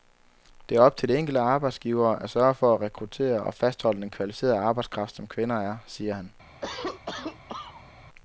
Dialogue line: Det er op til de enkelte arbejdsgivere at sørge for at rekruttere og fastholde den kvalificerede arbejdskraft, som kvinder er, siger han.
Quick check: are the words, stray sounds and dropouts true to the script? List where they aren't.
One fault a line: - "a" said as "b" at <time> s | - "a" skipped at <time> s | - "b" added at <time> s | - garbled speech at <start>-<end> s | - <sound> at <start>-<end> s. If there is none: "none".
- cough at 6.6-7.9 s